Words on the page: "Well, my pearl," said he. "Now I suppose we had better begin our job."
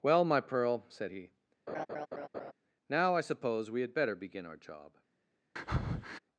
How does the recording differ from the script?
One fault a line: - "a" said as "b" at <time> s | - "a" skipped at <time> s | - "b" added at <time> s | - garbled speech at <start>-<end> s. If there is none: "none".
none